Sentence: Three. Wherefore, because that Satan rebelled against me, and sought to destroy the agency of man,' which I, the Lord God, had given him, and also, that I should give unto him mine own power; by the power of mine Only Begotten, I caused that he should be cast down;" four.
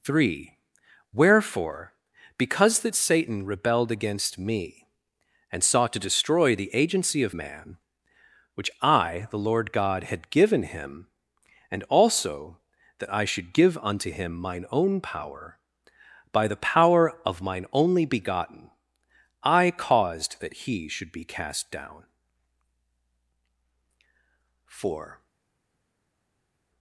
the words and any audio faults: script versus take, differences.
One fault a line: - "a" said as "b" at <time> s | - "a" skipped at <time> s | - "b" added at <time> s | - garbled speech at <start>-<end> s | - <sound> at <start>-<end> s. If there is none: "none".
none